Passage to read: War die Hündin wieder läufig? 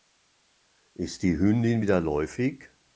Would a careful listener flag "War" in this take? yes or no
yes